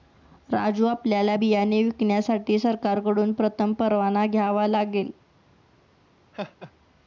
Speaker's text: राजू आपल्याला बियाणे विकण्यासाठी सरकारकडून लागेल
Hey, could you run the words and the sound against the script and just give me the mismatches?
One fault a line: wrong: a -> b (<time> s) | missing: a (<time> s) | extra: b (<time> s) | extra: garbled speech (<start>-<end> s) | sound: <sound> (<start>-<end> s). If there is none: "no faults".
extra: प्रथम परवाना घ्यावा (3.3 s)
sound: laugh (6.3-6.7 s)